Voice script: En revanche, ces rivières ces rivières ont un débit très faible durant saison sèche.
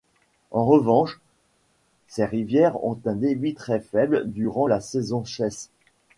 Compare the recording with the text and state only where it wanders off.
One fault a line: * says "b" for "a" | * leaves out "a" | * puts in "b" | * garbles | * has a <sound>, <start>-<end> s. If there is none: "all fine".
* leaves out "ces rivières"
* puts in "la"